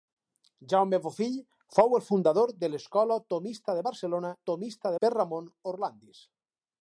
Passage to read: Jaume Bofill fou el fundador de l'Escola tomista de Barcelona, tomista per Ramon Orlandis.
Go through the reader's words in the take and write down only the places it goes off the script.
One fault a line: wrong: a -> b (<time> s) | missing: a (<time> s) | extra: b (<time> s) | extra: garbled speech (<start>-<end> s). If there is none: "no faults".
no faults